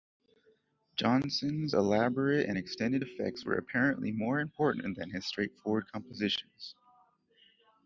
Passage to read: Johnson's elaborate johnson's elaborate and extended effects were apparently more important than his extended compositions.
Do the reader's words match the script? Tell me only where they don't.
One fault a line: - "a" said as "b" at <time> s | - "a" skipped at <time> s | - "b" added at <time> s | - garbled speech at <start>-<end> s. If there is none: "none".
- "johnson's elaborate" skipped at 2.5 s
- "extended" said as "straightforward" at 5.2 s